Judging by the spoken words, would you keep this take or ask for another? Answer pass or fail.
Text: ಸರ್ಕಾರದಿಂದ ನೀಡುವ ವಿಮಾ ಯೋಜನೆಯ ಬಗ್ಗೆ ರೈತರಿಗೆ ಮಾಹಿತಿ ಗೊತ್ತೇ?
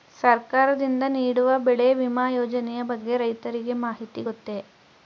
fail